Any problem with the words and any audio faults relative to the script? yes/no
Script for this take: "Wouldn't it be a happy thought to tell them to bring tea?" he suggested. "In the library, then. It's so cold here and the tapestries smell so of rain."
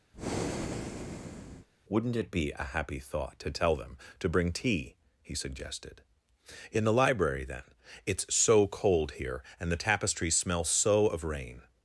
yes